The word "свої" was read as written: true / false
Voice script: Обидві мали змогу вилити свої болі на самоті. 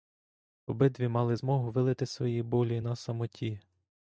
true